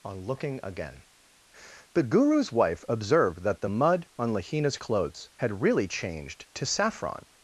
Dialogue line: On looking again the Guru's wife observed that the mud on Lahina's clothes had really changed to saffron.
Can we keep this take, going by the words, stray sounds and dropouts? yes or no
yes